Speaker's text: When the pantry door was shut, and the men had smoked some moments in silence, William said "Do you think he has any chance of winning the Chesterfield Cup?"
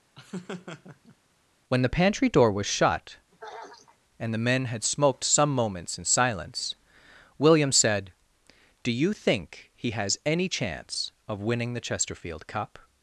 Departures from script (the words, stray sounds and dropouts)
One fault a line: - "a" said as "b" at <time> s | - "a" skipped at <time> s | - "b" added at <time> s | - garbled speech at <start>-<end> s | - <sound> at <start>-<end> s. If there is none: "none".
- laugh at 0.1-1.2 s
- throat clearing at 3.3-4.0 s